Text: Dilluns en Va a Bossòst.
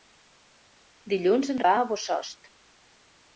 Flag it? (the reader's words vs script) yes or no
no